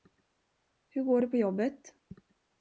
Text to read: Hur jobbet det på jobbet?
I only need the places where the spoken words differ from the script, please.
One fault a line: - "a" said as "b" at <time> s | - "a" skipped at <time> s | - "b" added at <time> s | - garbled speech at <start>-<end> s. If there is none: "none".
- "jobbet" said as "går" at 1.0 s